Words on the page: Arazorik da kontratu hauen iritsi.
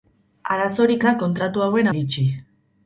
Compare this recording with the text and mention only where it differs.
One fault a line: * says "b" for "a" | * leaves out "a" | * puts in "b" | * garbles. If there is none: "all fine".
all fine